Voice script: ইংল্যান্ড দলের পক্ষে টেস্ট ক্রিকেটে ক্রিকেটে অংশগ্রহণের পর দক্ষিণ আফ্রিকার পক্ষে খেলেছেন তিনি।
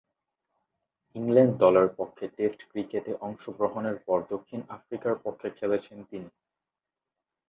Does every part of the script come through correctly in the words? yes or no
no